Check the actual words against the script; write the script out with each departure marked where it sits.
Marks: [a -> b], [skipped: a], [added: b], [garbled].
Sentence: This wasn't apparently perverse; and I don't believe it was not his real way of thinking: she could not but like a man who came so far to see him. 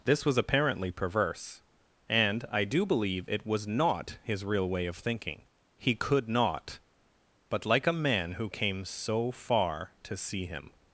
This [wasn't -> was] apparently perverse; and I [don't -> do] believe it was not his real way of thinking: [she -> he] could not but like a man who came so far to see him.